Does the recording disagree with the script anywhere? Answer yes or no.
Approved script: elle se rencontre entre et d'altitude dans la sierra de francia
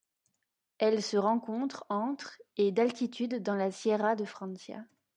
no